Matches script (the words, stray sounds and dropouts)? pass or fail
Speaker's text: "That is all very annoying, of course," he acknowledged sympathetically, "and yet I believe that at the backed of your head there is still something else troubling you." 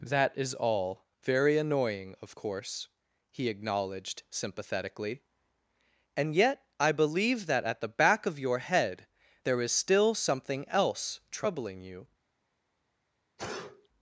fail